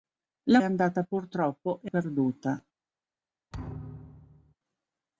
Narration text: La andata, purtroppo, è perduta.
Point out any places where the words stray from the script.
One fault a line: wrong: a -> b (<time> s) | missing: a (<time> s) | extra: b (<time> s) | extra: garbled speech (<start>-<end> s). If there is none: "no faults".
no faults